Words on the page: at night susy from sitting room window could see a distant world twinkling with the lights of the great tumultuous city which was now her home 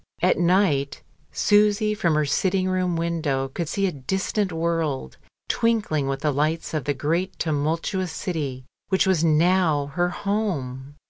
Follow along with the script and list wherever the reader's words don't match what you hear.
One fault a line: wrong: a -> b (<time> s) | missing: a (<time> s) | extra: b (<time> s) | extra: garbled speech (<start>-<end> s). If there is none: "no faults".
extra: her (2.1 s)